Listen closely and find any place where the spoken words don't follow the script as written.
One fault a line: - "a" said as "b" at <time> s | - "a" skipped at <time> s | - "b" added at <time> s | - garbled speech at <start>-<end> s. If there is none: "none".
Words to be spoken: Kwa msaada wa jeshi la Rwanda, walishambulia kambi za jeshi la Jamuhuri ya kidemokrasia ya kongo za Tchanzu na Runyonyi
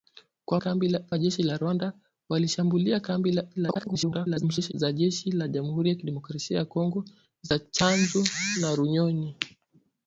- "msaada" said as "kambi" at 0.6 s
- garbled speech at 3.6-4.7 s